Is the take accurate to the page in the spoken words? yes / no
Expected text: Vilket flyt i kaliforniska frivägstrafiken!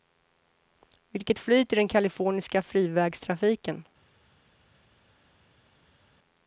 no